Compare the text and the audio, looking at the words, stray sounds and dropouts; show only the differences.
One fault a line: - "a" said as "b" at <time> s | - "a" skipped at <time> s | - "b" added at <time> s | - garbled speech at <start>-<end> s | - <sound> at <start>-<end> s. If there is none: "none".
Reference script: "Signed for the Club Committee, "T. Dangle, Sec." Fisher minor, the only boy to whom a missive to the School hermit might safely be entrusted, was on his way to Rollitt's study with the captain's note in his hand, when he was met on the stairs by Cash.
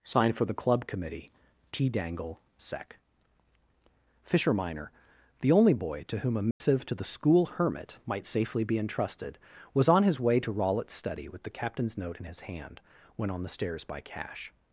- dropout at 6.5-6.6 s
- "he was met" skipped at 13.3 s